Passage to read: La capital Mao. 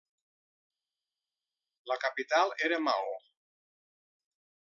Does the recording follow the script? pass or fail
fail